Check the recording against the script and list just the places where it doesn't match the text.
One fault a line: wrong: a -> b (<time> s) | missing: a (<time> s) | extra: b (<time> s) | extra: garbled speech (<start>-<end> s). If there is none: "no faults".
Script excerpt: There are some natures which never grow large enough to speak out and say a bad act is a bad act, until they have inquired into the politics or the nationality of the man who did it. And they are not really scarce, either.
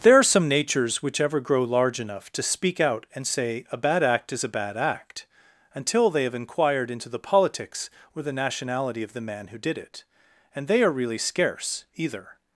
wrong: never -> ever (1.2 s)
missing: not (10.9 s)